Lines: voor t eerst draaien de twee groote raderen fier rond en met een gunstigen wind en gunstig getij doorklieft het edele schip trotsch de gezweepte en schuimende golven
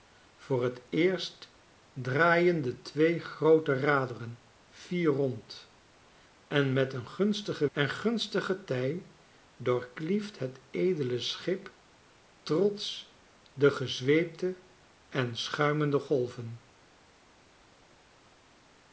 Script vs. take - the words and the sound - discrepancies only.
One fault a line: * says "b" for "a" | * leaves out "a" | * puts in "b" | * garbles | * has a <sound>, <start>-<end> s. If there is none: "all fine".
* leaves out "wind"